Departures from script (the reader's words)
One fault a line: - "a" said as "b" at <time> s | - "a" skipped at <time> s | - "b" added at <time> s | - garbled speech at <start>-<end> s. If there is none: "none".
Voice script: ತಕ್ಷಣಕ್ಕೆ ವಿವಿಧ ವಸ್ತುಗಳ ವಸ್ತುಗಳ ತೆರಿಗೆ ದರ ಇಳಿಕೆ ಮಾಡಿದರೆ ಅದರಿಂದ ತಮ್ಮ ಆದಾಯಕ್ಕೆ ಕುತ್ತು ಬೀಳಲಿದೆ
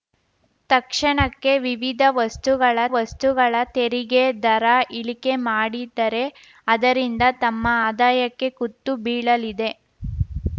none